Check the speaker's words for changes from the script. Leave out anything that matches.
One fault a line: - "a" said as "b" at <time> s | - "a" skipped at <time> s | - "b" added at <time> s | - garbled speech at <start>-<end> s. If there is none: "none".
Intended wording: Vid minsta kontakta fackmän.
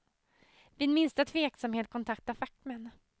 - "tveksamhet" added at 1.2 s